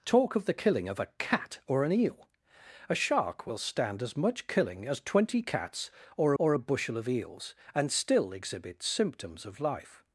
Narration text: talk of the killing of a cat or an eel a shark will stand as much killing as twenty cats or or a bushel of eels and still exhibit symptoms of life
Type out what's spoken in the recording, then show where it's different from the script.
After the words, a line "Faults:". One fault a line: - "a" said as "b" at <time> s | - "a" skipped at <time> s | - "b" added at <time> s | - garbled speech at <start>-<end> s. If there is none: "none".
talk of the killing of a cat or an eel a shark will stand as much killing as twenty cats or or a bushel of eels and still exhibit symptoms of life
Faults:
none